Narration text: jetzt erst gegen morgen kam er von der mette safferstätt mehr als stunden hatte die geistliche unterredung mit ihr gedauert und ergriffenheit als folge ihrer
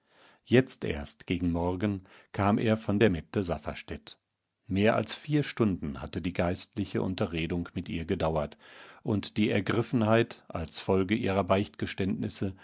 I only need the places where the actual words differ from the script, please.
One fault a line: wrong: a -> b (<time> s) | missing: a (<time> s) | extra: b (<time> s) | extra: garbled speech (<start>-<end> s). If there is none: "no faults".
extra: vier (5.2 s)
extra: die (9.4 s)